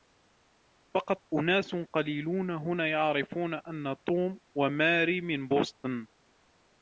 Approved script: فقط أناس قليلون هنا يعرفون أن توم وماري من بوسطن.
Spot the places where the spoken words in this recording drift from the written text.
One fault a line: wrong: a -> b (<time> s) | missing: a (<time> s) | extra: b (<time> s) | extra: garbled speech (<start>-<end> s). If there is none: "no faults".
no faults